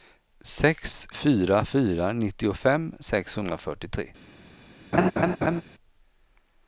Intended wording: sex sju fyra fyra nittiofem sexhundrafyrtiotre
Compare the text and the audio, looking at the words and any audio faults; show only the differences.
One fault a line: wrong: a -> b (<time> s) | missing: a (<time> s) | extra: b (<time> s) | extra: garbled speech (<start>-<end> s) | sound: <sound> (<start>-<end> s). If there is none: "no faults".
missing: sju (1.1 s)
sound: laugh (4.9-5.6 s)